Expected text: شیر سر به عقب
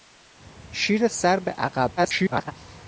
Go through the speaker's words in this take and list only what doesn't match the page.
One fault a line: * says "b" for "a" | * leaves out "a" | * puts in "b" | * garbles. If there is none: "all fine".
* garbles